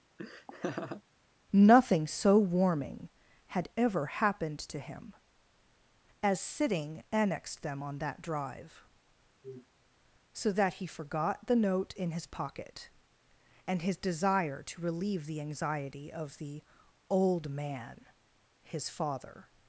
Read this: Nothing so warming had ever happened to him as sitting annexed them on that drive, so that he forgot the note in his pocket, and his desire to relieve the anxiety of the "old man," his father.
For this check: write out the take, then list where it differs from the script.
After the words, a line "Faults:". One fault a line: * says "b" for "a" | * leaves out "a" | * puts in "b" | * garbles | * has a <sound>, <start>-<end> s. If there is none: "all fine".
Nothing so warming had ever happened to him as sitting annexed them on that drive, so that he forgot the note in his pocket, and his desire to relieve the anxiety of the "old man," his father.
Faults:
* has a laugh, 0.2-1.0 s
* has a sniff, 9.4-9.7 s